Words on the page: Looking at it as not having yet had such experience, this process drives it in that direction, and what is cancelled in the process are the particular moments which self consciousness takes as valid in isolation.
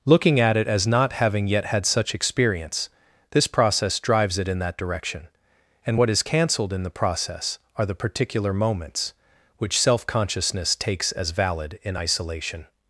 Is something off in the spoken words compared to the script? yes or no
no